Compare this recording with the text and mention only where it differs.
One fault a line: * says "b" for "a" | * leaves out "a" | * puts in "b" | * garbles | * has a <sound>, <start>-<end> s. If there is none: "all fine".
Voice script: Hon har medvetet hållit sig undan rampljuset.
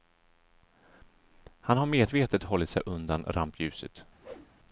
* says "Han" for "Hon"
* has a whoosh, 4.2-4.5 s